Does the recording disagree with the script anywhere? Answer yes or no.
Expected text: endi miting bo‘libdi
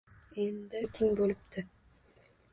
no